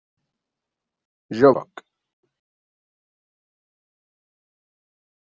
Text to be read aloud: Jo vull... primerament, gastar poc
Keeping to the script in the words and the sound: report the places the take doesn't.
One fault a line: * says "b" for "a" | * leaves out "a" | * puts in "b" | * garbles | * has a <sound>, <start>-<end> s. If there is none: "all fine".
* leaves out "vull primerament gastar"